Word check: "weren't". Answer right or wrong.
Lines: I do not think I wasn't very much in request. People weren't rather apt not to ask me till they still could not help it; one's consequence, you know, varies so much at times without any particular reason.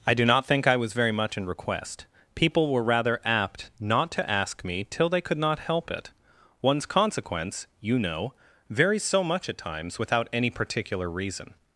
wrong